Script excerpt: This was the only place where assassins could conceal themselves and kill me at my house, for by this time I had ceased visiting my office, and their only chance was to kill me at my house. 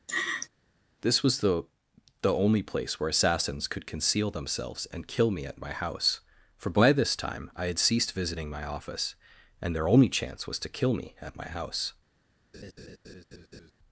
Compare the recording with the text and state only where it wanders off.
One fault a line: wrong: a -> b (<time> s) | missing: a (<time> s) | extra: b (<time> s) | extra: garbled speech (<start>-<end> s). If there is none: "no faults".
extra: the (2.2 s)